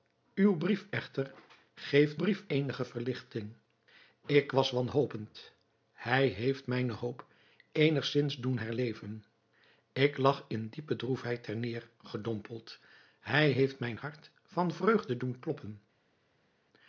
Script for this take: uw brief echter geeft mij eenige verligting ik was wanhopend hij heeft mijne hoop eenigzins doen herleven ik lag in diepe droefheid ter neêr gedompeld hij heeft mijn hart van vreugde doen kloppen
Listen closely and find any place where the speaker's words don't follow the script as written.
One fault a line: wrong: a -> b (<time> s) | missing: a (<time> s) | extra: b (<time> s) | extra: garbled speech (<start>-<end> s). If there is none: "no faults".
wrong: mij -> brief (2.2 s)